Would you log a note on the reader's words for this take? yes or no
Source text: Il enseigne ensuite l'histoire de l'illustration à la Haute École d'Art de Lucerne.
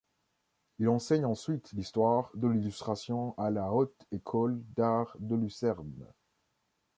no